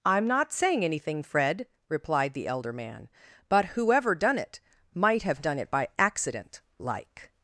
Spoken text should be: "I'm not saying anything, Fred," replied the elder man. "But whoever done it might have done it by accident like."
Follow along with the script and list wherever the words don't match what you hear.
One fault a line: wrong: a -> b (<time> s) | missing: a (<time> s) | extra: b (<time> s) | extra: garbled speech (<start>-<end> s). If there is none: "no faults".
no faults